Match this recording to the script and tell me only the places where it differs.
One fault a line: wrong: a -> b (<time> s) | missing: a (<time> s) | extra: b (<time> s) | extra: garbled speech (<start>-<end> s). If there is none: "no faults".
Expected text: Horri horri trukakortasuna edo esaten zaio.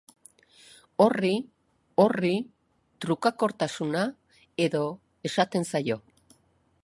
no faults